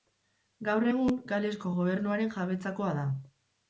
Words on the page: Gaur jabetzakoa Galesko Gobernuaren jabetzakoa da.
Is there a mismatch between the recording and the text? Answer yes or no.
yes